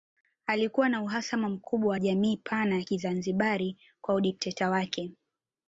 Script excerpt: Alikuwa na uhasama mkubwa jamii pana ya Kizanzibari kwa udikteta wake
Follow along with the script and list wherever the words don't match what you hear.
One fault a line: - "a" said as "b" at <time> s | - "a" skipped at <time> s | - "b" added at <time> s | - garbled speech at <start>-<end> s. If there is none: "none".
none